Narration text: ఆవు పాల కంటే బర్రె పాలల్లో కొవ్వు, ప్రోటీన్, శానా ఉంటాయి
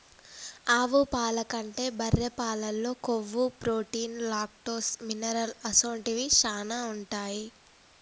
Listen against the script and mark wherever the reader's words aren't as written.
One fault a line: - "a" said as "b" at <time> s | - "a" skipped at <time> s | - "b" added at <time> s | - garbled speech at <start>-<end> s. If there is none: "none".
- "లాక్టోస్ మినరల్ అసొంటివి" added at 4.3 s